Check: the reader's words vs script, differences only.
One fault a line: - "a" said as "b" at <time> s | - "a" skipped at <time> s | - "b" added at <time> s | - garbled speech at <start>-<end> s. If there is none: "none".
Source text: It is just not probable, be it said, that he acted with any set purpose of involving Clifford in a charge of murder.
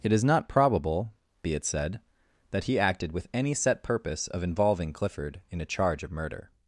- "just" skipped at 0.2 s